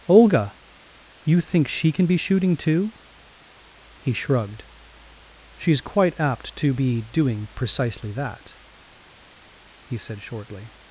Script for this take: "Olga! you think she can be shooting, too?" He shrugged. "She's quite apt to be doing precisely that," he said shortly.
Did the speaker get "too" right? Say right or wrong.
right